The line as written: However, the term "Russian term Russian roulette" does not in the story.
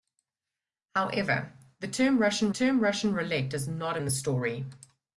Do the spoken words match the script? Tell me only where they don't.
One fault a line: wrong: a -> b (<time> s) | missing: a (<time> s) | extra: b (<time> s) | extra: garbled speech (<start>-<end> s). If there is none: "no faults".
no faults